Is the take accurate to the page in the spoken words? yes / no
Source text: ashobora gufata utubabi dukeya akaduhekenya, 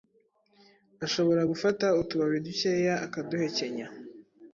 yes